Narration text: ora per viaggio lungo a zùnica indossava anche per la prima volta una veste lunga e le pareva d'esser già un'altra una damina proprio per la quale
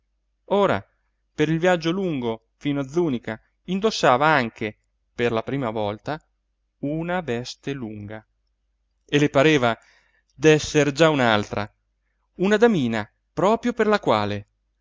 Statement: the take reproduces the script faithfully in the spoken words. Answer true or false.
false